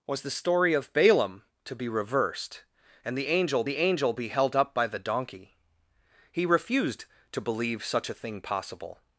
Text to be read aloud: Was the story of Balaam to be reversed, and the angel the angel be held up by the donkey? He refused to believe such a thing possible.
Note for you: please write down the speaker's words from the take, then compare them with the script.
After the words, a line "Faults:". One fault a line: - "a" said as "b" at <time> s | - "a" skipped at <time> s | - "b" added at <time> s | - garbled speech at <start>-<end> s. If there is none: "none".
Was the story of Balaam to be reversed, and the angel the angel be held up by the donkey? He refused to believe such a thing possible.
Faults:
none